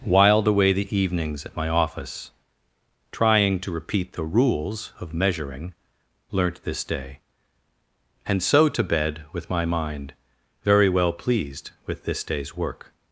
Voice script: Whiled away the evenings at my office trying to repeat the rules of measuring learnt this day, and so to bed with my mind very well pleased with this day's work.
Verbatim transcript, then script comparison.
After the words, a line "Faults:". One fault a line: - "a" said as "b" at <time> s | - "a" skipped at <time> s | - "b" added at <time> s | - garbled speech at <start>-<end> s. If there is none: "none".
Whiled away the evenings at my office trying to repeat the rules of measuring learnt this day, and so to bed with my mind very well pleased with this day's work.
Faults:
none